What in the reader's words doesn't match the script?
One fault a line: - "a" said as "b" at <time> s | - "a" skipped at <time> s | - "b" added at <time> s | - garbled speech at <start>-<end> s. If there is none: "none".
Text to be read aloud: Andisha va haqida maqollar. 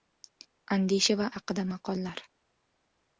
none